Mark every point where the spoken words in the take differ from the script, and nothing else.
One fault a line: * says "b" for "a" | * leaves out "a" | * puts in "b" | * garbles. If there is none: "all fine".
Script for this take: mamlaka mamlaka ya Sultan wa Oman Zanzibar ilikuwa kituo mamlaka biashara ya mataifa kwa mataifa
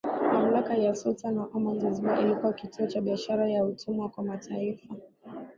* leaves out "mamlaka"
* says "cha" for "mamlaka"
* says "utumwa" for "mataifa"